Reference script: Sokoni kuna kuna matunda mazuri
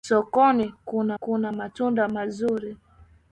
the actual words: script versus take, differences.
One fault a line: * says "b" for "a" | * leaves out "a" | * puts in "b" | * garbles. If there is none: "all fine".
all fine